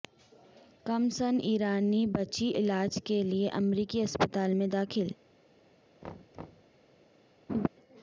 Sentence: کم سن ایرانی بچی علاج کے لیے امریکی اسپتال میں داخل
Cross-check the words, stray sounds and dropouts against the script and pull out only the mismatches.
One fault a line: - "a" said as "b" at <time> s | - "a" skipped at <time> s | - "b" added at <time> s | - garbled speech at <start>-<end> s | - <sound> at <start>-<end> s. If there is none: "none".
- thud at 6.0-6.8 s
- laugh at 7.5-7.7 s